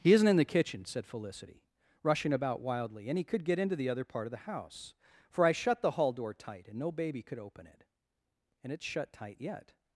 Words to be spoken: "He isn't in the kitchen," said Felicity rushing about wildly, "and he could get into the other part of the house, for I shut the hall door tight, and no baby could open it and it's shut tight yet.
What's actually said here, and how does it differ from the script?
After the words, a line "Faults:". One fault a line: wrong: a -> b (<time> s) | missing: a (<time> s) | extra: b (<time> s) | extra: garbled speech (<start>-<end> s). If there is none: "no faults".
"He isn't in the kitchen," said Felicity rushing about wildly, "and he could get into the other part of the house, for I shut the hall door tight, and no baby could open it and it's shut tight yet.
Faults:
no faults